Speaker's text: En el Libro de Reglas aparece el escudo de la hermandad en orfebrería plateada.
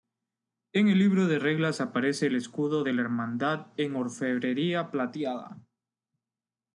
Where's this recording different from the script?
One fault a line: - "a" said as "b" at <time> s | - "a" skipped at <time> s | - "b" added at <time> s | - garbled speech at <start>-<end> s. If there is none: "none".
none